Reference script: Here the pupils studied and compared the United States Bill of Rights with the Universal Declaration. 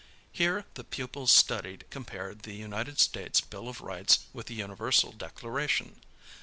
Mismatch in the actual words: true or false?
true